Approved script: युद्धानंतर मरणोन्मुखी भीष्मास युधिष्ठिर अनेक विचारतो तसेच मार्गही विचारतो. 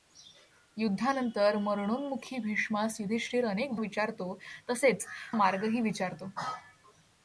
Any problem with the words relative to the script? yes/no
no